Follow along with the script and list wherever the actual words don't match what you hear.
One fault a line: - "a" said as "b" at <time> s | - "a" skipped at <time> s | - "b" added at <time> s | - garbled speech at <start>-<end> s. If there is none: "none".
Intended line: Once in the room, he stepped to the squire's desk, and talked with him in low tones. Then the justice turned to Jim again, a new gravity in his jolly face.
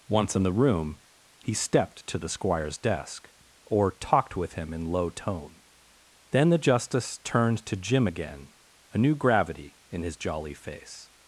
- "and" said as "or" at 3.6 s
- "tones" said as "tone" at 5.1 s